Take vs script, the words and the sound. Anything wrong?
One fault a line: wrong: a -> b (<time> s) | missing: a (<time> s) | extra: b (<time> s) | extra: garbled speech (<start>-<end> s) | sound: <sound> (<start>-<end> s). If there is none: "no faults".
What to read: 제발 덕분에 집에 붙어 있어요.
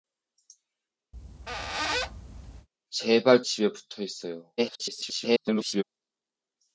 sound: squeak (1.1-2.7 s)
missing: 덕분에 (3.4 s)
extra: garbled speech (4.6-5.8 s)